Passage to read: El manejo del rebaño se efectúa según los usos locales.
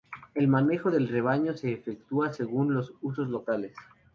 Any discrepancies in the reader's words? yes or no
no